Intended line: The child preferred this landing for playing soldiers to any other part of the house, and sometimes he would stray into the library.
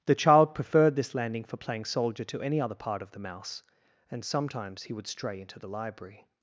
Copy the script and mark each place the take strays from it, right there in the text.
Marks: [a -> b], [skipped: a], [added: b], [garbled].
The child preferred this landing for playing [soldiers -> soldier] to any other part of the [house, -> mouse] and sometimes he would stray into the library.